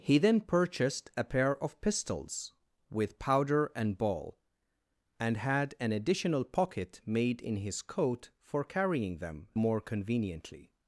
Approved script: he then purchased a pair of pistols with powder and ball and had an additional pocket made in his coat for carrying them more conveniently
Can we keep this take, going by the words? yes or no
yes